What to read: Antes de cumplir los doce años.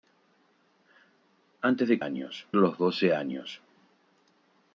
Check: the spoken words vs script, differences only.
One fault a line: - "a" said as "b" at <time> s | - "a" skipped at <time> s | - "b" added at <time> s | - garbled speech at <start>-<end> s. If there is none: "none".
- "cumplir" said as "años" at 2.0 s